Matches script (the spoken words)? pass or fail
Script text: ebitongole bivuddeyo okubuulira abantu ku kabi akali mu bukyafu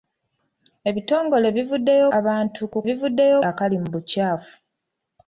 fail